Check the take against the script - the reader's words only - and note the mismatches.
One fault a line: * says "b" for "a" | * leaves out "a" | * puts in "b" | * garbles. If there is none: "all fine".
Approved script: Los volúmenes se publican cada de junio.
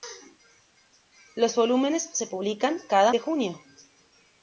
all fine